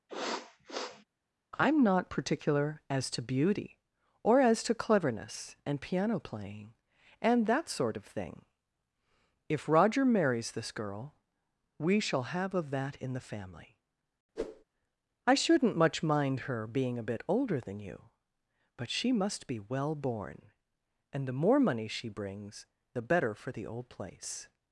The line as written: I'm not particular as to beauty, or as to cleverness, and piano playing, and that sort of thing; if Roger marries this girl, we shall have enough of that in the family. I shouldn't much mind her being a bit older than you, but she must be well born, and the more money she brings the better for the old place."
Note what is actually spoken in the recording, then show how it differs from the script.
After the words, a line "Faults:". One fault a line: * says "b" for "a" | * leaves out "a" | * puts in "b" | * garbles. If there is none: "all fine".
I'm not particular as to beauty, or as to cleverness, and piano playing, and that sort of thing; if Roger marries this girl, we shall have of that in the family. I shouldn't much mind her being a bit older than you, but she must be well born, and the more money she brings the better for the old place."
Faults:
* leaves out "enough"